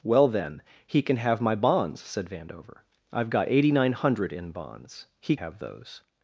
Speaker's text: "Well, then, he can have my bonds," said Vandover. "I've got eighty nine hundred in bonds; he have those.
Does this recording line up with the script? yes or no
yes